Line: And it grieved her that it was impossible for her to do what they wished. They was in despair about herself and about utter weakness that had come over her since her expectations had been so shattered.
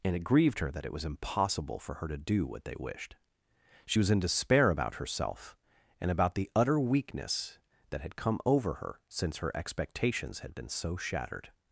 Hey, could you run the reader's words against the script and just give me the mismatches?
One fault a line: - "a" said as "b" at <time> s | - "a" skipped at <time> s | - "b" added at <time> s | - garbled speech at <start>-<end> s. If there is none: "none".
- "They" said as "She" at 3.9 s
- "the" added at 6.3 s